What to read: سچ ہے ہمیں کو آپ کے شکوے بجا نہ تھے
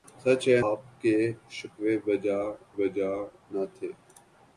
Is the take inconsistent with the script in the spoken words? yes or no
yes